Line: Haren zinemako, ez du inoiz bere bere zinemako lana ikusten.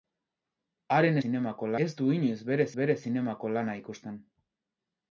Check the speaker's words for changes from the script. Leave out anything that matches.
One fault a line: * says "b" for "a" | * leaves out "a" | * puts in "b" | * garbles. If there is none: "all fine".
all fine